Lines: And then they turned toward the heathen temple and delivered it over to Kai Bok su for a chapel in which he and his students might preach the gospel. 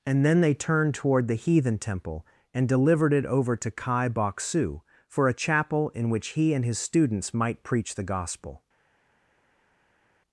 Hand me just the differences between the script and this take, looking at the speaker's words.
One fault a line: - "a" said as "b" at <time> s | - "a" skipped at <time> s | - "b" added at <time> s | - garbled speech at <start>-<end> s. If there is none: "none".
none